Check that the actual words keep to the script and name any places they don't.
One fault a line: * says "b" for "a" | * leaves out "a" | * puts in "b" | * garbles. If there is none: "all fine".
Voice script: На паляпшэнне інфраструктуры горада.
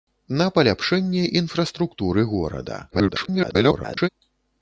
* garbles